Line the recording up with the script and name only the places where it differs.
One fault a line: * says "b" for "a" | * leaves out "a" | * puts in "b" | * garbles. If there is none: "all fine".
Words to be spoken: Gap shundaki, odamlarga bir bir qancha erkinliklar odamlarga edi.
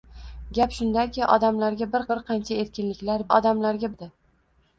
all fine